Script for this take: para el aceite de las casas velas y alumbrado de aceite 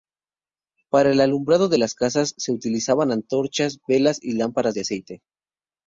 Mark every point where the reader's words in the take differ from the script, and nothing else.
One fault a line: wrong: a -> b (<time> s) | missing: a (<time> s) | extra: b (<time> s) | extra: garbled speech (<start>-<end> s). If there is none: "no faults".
wrong: aceite -> alumbrado (1.2 s)
extra: se utilizaban antorchas (2.4 s)
wrong: alumbrado -> lámparas (4.3 s)